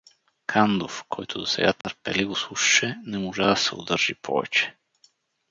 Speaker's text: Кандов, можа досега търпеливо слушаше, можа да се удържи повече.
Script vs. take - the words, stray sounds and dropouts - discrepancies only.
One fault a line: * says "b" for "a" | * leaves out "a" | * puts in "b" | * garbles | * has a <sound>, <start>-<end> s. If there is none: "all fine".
* says "който" for "можа"
* has a dropout, 1.8-1.8 s
* puts in "не"